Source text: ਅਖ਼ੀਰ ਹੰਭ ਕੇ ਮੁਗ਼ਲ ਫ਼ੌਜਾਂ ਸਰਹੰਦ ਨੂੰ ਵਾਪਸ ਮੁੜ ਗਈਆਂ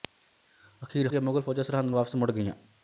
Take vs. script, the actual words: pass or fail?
fail